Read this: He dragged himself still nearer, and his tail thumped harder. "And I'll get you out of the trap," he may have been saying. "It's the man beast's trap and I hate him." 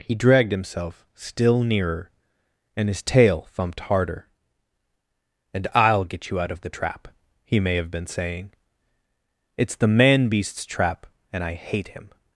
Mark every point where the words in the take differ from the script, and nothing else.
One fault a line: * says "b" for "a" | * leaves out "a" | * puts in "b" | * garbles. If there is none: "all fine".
all fine